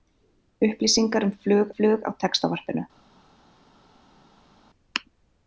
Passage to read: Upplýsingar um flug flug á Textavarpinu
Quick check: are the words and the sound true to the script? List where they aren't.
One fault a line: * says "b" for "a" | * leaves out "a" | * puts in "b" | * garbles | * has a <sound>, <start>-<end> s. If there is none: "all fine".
all fine